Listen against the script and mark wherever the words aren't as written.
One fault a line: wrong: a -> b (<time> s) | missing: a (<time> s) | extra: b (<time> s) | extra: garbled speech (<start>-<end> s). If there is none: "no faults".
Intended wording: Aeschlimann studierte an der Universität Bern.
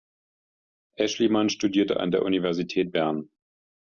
no faults